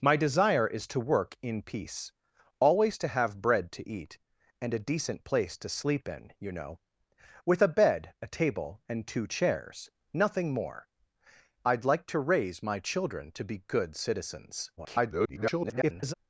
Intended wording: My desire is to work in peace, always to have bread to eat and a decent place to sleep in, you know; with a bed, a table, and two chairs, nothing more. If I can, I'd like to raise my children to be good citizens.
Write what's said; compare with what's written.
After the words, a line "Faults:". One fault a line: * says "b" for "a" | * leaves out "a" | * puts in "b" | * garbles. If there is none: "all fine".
My desire is to work in peace, always to have bread to eat and a decent place to sleep in, you know; with a bed, a table, and two chairs, nothing more. I'd like to raise my children to be good citizens. [garbled]
Faults:
* leaves out "If I can"
* garbles